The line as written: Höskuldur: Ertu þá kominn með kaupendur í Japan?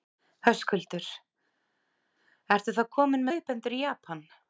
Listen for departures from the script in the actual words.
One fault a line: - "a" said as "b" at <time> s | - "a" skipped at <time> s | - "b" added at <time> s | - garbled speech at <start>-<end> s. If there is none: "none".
- "með" skipped at 3.3 s